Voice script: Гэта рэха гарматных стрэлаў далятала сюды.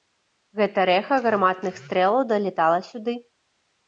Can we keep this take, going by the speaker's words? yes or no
yes